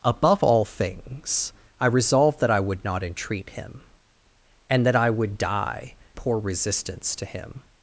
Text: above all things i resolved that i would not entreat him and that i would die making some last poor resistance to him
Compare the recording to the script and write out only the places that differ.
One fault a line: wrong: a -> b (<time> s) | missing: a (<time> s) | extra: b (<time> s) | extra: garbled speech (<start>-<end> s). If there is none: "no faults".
missing: making some last (5.9 s)